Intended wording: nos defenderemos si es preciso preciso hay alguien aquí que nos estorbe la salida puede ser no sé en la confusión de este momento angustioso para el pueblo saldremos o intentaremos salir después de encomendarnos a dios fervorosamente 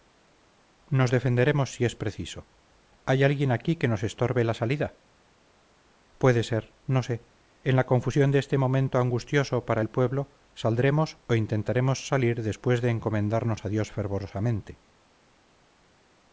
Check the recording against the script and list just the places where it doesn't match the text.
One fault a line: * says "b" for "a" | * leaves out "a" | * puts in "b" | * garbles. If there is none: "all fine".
* leaves out "preciso"